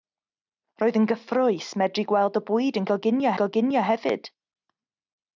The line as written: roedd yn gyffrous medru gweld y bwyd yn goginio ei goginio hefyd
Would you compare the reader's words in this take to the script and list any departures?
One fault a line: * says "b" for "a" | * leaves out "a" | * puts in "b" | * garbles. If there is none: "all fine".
all fine